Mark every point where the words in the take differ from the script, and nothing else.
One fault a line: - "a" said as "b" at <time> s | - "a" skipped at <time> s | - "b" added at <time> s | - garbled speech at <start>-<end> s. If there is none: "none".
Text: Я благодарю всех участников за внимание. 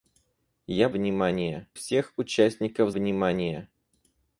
- "благодарю" said as "внимание" at 0.9 s
- "за" skipped at 2.9 s